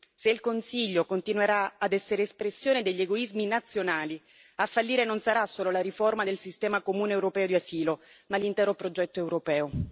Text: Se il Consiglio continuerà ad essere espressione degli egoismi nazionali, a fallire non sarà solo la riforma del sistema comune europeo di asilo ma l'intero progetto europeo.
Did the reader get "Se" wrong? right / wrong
right